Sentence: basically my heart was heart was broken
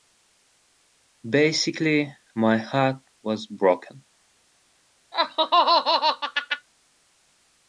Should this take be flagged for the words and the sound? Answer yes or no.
yes